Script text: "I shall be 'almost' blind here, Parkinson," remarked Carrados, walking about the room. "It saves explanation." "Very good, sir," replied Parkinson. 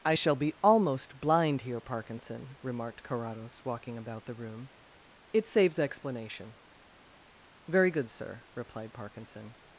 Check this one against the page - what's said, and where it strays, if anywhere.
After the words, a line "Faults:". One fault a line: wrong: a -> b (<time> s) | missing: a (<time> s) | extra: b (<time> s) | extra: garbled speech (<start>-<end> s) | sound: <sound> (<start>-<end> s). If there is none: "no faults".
"I shall be 'almost' blind here, Parkinson," remarked Carrados, walking about the room. "It saves explanation." "Very good, sir," replied Parkinson.
Faults:
no faults